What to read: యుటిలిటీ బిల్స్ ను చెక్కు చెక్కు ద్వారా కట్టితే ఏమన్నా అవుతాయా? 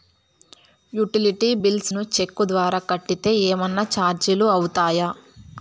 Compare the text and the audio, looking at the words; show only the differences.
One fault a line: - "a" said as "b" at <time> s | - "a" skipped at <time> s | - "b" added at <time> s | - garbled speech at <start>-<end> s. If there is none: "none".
- "చెక్కు" skipped at 2.4 s
- "చార్జీలు" added at 3.9 s